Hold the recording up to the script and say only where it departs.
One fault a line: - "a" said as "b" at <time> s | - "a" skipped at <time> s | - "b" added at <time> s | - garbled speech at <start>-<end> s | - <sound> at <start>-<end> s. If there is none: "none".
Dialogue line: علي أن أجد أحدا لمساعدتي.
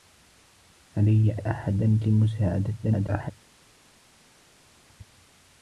- "أن أجد" skipped at 1.4 s
- garbled speech at 2.8-3.3 s